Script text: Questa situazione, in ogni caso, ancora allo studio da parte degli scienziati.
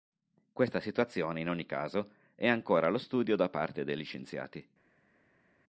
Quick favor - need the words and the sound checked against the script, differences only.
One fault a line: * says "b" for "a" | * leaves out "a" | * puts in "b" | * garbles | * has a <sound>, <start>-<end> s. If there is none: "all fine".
* puts in "è"